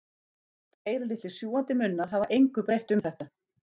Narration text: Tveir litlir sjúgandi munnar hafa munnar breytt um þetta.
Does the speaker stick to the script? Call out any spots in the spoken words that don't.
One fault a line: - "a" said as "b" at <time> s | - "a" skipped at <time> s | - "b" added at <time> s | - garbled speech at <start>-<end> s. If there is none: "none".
- "munnar" said as "engu" at 2.4 s